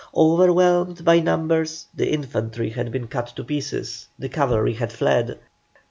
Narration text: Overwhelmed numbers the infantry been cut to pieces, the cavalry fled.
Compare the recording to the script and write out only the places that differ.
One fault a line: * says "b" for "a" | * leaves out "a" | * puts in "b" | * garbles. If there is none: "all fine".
* puts in "by"
* puts in "had"
* puts in "had"